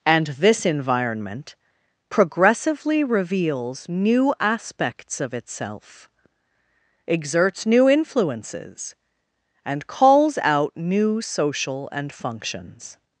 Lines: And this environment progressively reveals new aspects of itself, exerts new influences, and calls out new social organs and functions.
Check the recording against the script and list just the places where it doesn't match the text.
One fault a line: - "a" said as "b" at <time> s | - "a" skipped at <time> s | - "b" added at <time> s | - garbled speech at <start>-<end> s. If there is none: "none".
- "organs" skipped at 11.9 s